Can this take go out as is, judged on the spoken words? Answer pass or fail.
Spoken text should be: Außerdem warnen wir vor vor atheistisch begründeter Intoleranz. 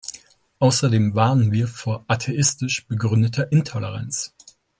fail